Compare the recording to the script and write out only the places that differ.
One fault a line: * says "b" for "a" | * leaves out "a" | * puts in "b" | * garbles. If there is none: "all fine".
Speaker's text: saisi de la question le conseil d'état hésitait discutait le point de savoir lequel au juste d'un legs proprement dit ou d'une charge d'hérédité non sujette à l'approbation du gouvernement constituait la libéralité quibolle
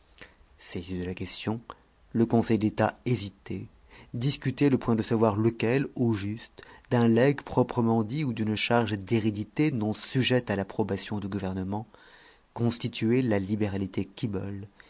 all fine